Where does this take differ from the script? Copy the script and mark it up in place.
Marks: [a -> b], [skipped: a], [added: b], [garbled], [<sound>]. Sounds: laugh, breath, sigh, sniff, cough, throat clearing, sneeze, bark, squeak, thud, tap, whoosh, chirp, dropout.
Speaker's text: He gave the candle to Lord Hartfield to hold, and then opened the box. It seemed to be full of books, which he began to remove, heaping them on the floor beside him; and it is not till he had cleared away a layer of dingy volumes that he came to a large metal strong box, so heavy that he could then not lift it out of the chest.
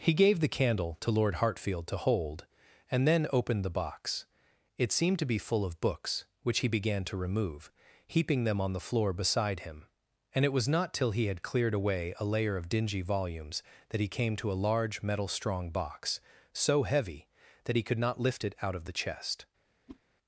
He gave the candle to Lord Hartfield to hold, and then opened the box. It seemed to be full of books, which he began to remove, heaping them on the floor beside him; and it [is -> was] not till he had cleared away a layer of dingy volumes that he came to a large metal strong box, so heavy that he could [skipped: then] not lift it out of the chest. [whoosh]